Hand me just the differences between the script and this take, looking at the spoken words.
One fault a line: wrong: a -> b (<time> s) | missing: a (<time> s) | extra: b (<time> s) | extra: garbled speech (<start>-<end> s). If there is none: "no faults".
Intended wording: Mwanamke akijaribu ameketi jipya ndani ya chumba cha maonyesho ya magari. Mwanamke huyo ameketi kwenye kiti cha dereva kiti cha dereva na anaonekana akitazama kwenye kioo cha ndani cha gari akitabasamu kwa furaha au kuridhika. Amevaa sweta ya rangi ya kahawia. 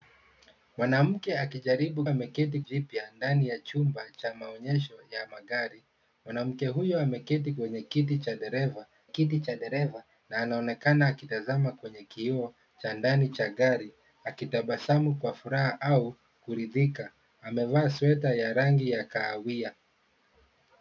no faults